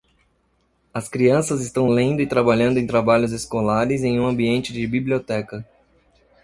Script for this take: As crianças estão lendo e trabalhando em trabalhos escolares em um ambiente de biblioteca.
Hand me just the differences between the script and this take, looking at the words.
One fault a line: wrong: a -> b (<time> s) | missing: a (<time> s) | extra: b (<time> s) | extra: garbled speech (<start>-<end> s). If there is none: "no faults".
no faults